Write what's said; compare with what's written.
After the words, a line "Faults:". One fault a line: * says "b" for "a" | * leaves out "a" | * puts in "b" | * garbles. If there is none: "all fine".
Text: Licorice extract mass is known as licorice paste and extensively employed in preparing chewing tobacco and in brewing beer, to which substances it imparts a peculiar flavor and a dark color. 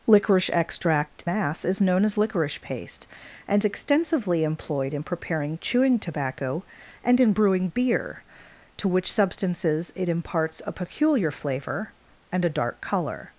Licorice extract mass is known as licorice paste and extensively employed in preparing chewing tobacco and in brewing beer, to which substances it imparts a peculiar flavor and a dark color.
Faults:
all fine